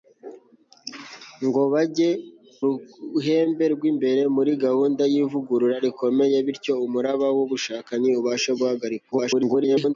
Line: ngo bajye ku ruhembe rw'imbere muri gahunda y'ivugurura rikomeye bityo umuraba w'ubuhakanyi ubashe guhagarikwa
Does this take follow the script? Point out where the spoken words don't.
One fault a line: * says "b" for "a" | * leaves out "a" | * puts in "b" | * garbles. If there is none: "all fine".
* leaves out "ku"
* garbles